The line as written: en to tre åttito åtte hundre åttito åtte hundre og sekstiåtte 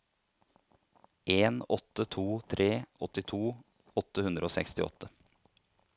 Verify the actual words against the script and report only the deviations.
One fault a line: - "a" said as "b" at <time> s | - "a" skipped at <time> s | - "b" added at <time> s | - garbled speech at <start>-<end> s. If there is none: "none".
- "åtte" added at 1.7 s
- "åttito åtte hundre" skipped at 4.5 s